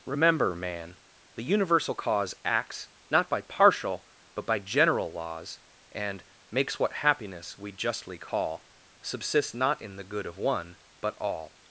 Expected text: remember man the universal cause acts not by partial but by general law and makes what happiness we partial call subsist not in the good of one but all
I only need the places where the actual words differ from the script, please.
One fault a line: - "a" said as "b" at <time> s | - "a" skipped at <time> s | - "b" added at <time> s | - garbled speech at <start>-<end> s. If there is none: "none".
- "law" said as "laws" at 5.1 s
- "partial" said as "justly" at 7.7 s